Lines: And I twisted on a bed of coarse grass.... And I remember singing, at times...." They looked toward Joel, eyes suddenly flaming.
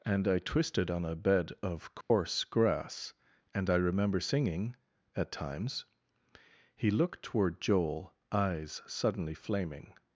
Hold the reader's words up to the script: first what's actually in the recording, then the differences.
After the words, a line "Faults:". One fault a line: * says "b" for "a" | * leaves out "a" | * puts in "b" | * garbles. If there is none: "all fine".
And I twisted on a bed of coarse grass.... And I remember singing, at times...." He looked toward Joel, eyes suddenly flaming.
Faults:
* says "He" for "They"